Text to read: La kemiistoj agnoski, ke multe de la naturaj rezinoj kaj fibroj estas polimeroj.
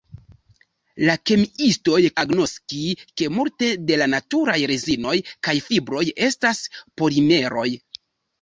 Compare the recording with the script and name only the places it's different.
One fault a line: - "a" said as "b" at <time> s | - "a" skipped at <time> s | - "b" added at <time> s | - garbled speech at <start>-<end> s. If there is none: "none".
none